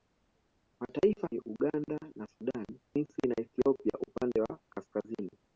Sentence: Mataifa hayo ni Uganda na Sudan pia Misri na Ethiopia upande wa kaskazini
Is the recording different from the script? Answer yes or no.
yes